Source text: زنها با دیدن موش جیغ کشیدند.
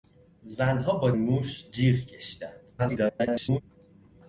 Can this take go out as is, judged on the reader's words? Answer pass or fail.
fail